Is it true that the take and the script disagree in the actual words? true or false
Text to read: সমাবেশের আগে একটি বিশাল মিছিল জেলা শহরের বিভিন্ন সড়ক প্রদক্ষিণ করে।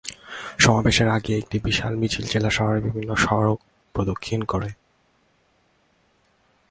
false